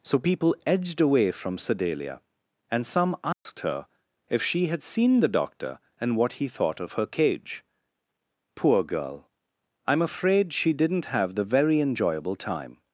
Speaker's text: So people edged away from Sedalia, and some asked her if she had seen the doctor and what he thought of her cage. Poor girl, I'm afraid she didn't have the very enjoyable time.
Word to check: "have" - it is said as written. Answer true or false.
true